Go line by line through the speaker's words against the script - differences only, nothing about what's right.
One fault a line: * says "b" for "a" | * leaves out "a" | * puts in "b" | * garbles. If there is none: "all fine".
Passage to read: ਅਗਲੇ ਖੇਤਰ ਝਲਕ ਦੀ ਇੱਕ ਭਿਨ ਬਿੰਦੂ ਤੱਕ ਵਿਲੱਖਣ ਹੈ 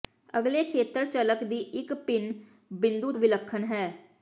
* leaves out "ਤੱਕ"